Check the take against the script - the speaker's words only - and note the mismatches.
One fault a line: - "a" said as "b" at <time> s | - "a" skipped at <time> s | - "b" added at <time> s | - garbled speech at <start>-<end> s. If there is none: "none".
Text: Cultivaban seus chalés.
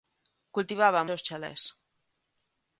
none